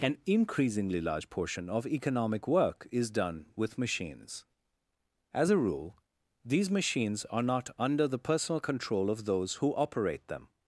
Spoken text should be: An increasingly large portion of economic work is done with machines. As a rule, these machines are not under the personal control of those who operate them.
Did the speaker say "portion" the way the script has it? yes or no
yes